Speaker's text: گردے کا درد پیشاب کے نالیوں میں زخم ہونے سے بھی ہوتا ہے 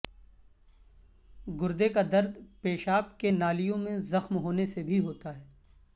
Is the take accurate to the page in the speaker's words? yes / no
yes